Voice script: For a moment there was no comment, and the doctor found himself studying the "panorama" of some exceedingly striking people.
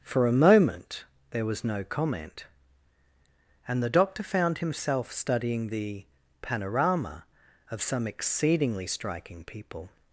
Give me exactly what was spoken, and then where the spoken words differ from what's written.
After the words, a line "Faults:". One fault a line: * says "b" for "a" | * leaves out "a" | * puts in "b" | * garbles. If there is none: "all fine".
For a moment there was no comment, and the doctor found himself studying the "panorama" of some exceedingly striking people.
Faults:
all fine